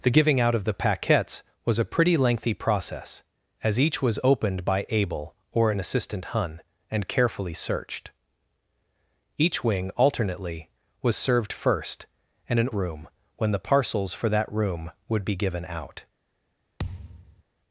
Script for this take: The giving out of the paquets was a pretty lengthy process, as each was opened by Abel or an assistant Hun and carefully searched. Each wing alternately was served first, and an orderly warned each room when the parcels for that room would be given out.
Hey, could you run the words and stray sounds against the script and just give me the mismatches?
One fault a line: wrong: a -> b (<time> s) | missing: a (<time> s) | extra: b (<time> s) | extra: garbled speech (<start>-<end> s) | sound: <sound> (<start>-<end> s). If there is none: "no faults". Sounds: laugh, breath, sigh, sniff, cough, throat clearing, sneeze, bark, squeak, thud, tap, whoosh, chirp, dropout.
missing: orderly warned each (12.7 s)
sound: thud (16.8-17.4 s)